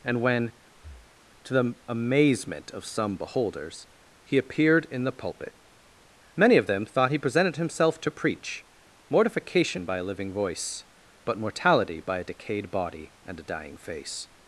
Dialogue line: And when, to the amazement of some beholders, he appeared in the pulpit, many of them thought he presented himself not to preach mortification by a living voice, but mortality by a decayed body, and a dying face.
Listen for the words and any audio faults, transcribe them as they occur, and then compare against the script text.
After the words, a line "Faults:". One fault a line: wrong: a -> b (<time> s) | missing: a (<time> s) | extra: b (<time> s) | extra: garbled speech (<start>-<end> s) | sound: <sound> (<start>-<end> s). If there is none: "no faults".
And when, to the amazement of some beholders, he appeared in the pulpit, many of them thought he presented himself to preach mortification by a living voice, but mortality by a decayed body, and a dying face.
Faults:
sound: breath (0.7-1.2 s)
missing: not (8.0 s)